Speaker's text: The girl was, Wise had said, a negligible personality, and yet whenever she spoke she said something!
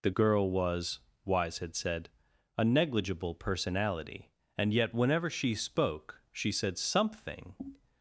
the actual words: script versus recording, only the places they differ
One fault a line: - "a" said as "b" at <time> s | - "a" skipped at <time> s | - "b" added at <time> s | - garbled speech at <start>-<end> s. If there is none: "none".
none